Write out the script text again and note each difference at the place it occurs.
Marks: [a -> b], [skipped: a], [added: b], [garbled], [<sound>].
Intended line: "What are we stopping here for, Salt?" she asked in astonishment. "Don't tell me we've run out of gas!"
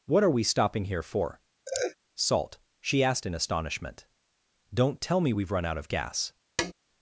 "What are we stopping here for, [laugh] Salt?" she asked in astonishment. "Don't tell me we've run out of gas!" [tap]